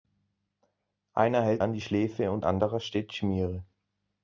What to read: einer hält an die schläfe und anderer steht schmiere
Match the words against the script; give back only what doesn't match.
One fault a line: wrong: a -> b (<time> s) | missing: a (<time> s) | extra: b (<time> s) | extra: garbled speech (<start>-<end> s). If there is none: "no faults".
no faults